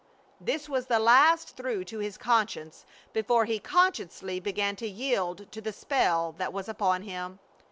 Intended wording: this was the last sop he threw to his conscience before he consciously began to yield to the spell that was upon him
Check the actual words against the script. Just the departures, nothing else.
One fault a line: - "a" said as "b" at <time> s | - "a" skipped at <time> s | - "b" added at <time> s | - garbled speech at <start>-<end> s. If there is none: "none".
- "sop he" skipped at 1.5 s